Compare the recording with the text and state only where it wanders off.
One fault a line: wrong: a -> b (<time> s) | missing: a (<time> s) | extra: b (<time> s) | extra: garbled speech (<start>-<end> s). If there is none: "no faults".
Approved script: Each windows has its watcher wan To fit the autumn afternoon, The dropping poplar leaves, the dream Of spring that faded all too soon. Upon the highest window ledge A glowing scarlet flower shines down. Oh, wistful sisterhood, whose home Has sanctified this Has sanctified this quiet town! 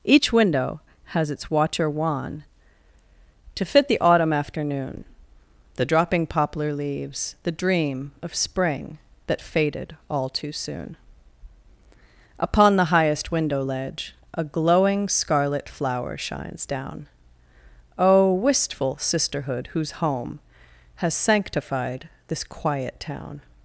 wrong: windows -> window (0.3 s)
missing: Has sanctified this (22.4 s)